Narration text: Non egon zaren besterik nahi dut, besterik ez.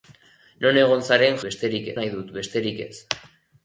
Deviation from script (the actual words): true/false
false